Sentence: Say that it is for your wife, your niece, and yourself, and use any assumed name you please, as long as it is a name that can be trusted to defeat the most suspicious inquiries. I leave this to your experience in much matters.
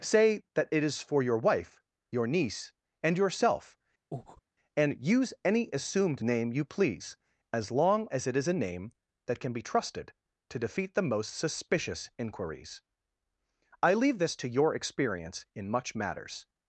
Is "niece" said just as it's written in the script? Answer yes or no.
yes